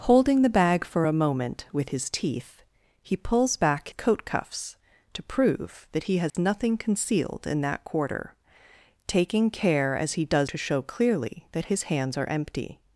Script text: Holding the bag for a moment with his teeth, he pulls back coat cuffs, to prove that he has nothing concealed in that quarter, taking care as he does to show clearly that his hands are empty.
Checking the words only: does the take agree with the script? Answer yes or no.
yes